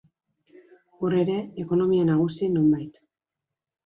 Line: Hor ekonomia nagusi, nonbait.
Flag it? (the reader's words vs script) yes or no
yes